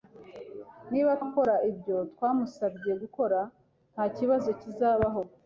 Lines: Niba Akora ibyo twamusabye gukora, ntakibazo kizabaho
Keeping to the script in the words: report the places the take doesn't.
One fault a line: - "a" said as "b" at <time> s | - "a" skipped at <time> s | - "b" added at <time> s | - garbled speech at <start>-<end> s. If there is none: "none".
none